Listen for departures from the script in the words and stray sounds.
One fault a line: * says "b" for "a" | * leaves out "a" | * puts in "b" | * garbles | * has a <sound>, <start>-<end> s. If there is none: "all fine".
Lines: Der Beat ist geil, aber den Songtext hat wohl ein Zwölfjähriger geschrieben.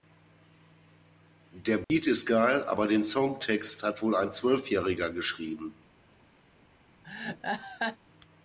* has a dropout, 1.8-1.9 s
* has a laugh, 7.0-8.0 s